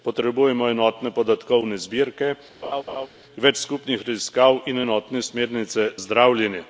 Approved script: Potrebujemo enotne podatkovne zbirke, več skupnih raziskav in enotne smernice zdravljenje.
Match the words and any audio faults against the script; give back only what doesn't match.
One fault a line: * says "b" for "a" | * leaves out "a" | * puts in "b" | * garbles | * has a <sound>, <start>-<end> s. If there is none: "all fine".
* has a laugh, 2.6-3.1 s